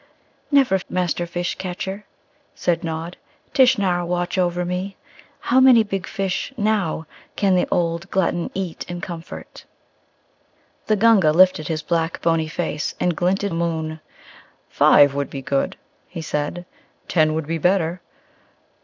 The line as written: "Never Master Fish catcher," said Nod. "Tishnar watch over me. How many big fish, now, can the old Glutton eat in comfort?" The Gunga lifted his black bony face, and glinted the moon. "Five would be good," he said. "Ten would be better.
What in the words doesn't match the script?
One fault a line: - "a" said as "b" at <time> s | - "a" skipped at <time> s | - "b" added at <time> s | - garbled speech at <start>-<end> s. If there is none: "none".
none